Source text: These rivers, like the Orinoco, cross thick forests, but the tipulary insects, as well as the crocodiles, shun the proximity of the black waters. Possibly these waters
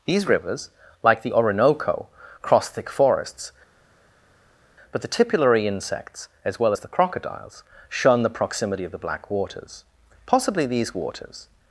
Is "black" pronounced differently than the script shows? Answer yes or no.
no